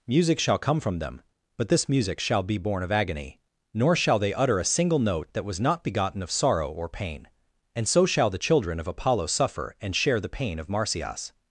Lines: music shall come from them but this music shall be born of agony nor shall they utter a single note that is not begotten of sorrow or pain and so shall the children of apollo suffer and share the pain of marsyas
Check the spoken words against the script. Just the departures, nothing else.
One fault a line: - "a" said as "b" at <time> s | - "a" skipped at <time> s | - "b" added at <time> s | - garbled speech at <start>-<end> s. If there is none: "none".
- "is" said as "was" at 5.5 s